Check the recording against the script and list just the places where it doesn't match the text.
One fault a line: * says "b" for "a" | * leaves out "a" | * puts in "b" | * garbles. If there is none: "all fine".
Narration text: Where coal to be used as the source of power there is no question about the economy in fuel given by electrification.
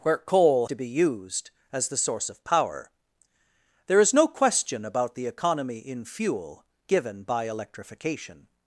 all fine